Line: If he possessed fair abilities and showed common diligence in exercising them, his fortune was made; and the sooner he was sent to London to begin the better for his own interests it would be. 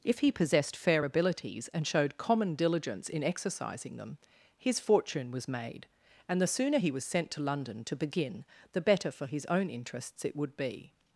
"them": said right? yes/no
yes